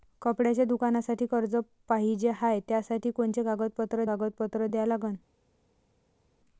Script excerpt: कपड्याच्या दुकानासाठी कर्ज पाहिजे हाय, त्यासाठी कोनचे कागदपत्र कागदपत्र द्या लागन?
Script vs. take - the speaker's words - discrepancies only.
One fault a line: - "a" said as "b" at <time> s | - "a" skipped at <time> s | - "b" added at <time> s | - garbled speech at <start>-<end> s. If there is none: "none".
none